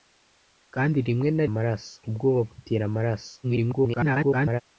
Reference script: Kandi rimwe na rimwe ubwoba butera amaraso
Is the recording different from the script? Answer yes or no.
yes